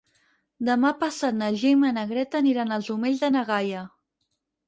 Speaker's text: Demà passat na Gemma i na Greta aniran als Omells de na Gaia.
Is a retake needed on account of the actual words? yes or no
no